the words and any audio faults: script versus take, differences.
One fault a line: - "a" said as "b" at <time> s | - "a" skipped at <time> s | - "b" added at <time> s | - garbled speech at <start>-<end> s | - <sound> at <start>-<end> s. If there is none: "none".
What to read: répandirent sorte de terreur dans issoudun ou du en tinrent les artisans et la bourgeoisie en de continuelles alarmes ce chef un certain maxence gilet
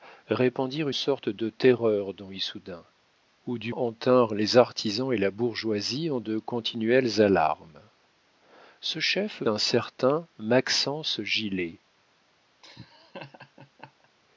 - laugh at 12.6-14.1 s